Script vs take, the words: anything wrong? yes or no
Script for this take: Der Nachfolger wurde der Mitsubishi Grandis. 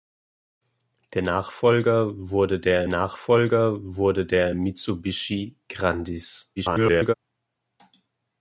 yes